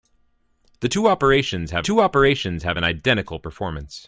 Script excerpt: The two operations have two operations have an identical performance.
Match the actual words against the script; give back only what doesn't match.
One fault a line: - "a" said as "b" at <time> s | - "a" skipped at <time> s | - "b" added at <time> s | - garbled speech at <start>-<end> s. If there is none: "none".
none